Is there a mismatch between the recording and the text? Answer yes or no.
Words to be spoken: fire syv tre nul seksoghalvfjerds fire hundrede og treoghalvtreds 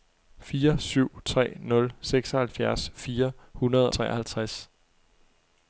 yes